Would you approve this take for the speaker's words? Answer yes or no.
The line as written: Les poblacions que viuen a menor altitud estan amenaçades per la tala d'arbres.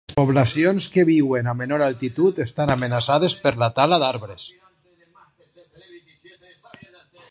yes